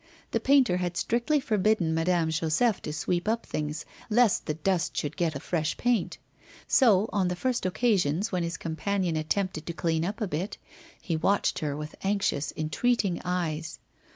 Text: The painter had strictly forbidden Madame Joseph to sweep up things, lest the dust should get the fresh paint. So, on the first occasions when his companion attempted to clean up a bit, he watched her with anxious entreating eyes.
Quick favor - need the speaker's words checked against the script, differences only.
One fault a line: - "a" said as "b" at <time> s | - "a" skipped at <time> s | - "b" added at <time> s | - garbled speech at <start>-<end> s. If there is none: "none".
none